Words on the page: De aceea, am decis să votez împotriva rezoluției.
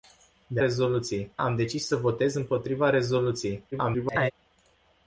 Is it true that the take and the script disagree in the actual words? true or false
true